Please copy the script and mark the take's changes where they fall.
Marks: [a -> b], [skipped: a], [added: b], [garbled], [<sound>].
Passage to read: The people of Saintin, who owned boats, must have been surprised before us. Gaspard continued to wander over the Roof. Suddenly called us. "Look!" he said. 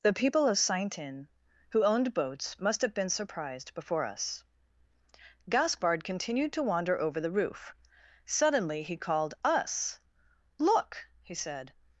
The people of Saintin, who owned boats, must have been surprised before us. Gaspard continued to wander over the Roof. Suddenly [added: he] called us. "Look!" he said.